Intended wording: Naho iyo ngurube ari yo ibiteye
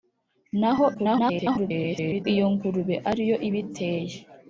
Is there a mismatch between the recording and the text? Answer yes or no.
yes